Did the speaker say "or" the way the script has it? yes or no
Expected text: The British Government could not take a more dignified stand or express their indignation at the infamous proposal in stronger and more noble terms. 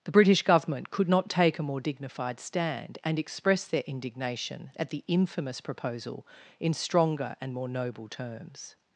no